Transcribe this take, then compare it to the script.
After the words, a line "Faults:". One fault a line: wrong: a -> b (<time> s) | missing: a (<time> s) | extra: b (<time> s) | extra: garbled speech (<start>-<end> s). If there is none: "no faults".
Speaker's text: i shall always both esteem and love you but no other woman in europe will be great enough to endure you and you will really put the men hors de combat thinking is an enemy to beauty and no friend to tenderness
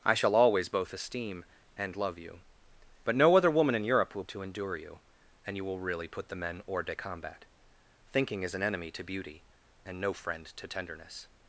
i shall always both esteem and love you but no other woman in europe will to endure you and you will really put the men hors de combat thinking is an enemy to beauty and no friend to tenderness
Faults:
missing: be great enough (4.2 s)